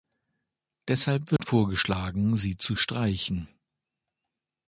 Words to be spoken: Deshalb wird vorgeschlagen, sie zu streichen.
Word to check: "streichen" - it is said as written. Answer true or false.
true